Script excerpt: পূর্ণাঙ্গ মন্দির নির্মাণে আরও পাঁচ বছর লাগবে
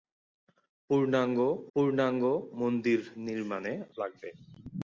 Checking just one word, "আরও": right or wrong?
wrong